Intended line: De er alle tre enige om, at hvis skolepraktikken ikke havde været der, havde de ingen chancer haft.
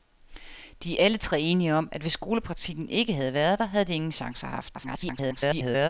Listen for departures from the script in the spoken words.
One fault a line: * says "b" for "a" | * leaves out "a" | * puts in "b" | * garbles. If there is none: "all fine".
* garbles